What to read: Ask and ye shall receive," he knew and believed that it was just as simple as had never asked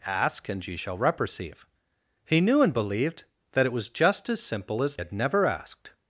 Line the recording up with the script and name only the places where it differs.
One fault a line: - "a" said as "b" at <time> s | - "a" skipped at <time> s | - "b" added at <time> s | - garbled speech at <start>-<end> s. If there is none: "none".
none